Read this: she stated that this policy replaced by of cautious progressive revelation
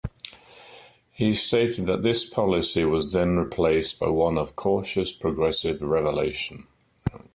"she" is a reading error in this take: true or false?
true